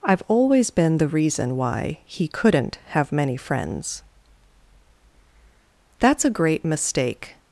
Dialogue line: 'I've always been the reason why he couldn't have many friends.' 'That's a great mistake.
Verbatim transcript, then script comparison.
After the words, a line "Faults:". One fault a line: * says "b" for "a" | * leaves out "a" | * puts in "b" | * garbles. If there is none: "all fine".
'I've always been the reason why he couldn't have many friends.' 'That's a great mistake.
Faults:
all fine